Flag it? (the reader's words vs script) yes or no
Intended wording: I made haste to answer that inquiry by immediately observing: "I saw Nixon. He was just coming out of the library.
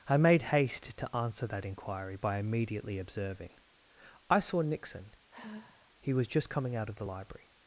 no